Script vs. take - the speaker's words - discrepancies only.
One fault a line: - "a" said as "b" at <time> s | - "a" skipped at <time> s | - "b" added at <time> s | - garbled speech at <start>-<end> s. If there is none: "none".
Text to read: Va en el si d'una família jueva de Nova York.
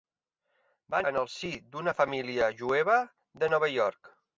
none